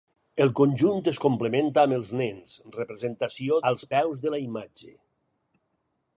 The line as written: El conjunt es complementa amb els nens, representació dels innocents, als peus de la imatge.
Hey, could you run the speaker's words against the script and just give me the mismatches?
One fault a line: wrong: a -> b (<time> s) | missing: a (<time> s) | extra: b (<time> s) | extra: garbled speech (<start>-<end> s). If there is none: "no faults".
missing: dels innocents (3.6 s)